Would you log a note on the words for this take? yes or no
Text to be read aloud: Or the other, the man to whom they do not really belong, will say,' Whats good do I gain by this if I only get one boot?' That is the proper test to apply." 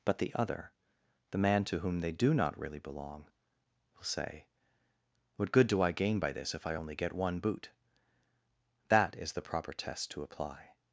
yes